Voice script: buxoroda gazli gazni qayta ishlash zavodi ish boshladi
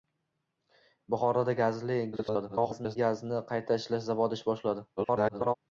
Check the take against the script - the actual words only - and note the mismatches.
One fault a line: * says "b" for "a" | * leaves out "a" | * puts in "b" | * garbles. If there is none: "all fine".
* garbles
* garbles